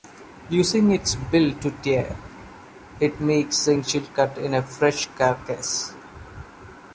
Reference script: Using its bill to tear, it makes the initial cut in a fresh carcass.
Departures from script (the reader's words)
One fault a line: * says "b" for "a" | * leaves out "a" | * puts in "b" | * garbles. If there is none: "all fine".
all fine